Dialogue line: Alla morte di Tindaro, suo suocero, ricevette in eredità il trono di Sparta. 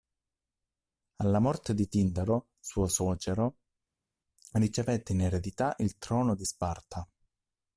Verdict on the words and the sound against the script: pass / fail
pass